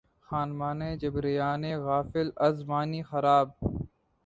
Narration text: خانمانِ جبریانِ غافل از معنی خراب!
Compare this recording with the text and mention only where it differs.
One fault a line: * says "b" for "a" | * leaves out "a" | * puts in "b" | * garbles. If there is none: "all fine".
all fine